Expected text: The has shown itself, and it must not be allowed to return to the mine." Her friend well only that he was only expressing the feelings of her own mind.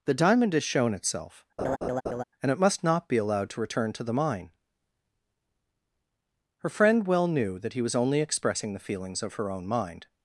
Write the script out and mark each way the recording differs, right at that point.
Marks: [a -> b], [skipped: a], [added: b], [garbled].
The [added: diamond] has shown itself, and it must not be allowed to return to the mine." Her friend well [only -> knew] that he was only expressing the feelings of her own mind.